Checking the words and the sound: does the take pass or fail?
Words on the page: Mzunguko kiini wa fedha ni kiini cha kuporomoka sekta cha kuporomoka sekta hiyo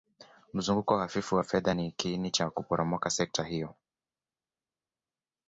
fail